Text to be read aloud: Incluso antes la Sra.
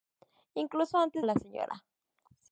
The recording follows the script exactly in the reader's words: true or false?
true